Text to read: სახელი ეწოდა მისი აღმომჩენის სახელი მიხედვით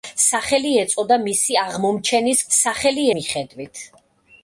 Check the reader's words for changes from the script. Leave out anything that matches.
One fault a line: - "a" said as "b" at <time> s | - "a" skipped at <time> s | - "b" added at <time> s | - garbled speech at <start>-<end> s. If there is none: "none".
none